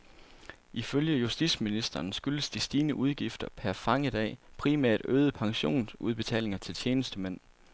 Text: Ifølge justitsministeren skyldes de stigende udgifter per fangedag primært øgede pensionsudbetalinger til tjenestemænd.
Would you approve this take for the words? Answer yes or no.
yes